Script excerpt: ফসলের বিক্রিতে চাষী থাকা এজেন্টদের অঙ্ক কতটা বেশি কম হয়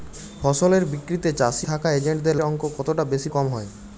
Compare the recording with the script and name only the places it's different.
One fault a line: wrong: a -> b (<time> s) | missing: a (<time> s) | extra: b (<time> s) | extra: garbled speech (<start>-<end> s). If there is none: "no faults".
no faults